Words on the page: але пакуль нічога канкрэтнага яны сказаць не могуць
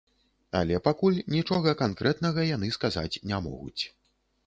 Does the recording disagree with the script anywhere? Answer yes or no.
no